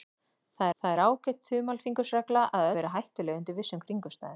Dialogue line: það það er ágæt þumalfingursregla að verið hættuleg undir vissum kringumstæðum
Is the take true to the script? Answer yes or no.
yes